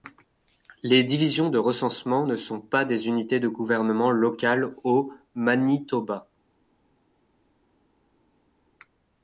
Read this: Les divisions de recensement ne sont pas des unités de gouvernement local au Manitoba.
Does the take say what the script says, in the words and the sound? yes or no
yes